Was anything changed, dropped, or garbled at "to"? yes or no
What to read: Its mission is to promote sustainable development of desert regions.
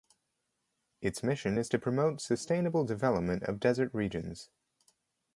no